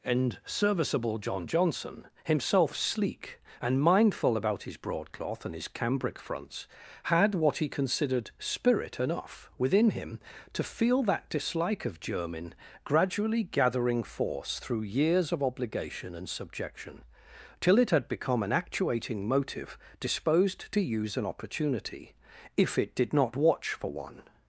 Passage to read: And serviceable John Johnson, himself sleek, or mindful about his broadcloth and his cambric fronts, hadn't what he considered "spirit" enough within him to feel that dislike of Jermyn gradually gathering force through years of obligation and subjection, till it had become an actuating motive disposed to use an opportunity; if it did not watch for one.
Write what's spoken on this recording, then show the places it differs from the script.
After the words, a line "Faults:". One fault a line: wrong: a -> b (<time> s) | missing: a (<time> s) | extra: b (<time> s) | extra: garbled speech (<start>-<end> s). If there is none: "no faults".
And serviceable John Johnson, himself sleek, and mindful about his broadcloth and his cambric fronts, had what he considered "spirit" enough within him to feel that dislike of Jermyn gradually gathering force through years of obligation and subjection, till it had become an actuating motive disposed to use an opportunity; if it did not watch for one.
Faults:
wrong: or -> and (3.6 s)
wrong: hadn't -> had (7.0 s)